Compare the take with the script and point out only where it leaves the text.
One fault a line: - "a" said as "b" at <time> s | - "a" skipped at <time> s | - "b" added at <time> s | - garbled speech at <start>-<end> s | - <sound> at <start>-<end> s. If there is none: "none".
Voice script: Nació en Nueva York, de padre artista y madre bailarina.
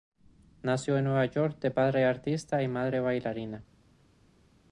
none